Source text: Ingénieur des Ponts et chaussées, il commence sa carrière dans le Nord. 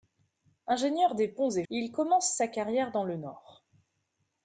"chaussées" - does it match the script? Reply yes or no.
no